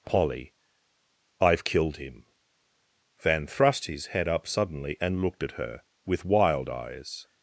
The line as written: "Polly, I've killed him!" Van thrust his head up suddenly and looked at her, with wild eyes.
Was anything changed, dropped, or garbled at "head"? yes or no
no